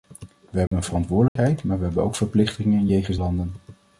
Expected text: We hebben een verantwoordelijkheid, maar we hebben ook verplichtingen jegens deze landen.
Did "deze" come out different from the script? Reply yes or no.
yes